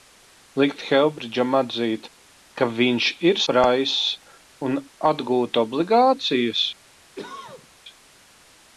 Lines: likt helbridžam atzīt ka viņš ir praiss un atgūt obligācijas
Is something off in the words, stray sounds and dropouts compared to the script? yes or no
yes